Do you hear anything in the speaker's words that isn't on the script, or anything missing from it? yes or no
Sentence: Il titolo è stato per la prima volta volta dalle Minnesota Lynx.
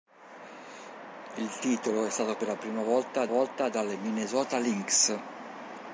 no